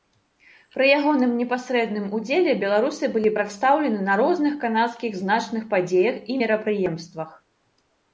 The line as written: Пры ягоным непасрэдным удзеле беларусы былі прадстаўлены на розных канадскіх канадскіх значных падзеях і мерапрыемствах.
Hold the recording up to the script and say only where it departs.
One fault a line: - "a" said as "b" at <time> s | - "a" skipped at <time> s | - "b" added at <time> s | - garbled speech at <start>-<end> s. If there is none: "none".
- "канадскіх" skipped at 5.2 s